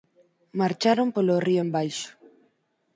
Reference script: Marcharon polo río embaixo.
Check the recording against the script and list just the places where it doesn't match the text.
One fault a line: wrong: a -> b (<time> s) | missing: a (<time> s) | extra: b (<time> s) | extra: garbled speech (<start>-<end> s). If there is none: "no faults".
no faults